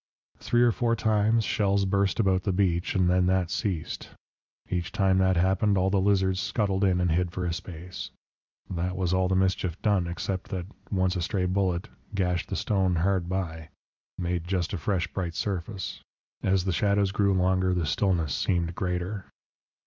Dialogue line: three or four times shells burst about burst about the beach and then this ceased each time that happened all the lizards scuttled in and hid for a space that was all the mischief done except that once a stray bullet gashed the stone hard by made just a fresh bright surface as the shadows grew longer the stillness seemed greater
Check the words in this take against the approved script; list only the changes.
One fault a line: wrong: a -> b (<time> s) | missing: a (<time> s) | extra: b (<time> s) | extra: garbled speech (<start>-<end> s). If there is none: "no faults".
missing: burst about (2.4 s)
wrong: this -> that (3.3 s)